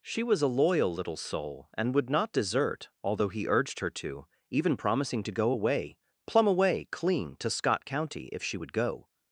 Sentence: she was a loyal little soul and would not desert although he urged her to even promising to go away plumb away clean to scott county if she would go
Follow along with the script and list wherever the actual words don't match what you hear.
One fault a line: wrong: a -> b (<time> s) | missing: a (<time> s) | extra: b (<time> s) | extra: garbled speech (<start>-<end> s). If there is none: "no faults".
no faults